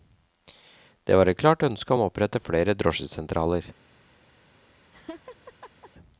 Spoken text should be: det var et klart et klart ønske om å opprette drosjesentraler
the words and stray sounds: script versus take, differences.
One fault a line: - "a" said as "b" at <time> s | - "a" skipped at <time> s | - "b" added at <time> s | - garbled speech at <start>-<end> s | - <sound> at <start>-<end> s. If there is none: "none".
- "et klart" skipped at 1.6 s
- "flere" added at 2.4 s
- laugh at 4.9-5.9 s